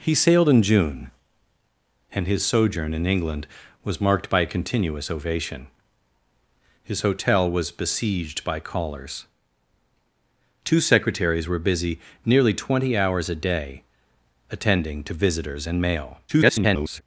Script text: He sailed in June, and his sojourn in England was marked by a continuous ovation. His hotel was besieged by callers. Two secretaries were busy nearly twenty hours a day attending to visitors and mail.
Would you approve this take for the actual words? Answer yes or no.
no